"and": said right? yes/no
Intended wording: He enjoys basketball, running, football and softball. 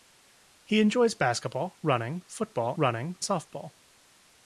no